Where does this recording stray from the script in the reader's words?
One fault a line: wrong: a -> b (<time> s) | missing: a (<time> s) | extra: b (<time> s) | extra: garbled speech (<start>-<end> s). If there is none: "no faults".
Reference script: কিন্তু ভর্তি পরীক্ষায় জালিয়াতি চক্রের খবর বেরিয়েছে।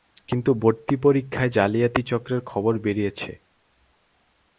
no faults